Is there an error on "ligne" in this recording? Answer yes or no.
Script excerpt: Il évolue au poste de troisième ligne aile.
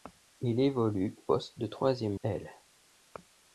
yes